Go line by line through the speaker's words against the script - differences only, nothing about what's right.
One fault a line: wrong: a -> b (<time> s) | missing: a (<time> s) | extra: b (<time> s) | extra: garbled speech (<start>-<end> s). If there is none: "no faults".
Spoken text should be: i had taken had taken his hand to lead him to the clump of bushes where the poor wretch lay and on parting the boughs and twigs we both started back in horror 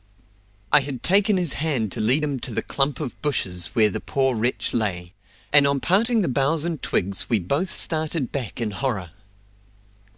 missing: had taken (1.4 s)